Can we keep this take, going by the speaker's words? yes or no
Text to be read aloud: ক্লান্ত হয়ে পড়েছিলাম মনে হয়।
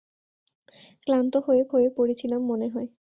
no